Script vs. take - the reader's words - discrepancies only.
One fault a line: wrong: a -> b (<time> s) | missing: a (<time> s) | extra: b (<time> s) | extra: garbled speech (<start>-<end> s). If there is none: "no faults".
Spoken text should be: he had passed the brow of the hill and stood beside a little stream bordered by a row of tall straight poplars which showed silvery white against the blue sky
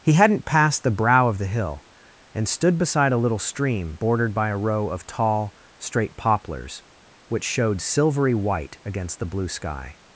wrong: had -> hadn't (0.1 s)